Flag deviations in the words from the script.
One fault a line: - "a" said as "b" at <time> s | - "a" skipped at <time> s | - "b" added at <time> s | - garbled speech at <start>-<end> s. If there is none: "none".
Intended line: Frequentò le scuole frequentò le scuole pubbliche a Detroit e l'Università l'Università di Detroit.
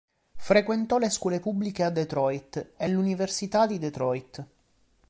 - "frequentò le scuole" skipped at 1.4 s
- "l'Università" skipped at 3.6 s